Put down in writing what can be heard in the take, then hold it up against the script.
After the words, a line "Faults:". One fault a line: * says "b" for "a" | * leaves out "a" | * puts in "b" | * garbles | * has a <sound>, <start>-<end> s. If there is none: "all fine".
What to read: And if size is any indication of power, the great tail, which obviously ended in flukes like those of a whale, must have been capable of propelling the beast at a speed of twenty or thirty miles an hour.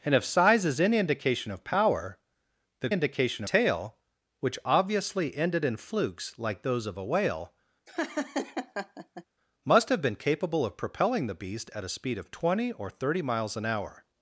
And if size is any indication of power, the indication tail, which obviously ended in flukes like those of a whale, must have been capable of propelling the beast at a speed of twenty or thirty miles an hour.
Faults:
* says "indication" for "great"
* has a laugh, 7.9-9.2 s